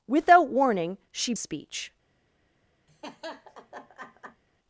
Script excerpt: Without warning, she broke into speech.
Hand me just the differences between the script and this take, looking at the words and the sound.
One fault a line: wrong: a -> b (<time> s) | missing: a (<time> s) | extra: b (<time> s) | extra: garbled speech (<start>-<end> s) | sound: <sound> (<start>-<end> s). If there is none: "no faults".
missing: broke into (1.3 s)
sound: laugh (2.9-4.4 s)